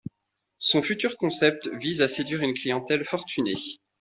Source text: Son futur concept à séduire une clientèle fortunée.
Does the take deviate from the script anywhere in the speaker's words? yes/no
yes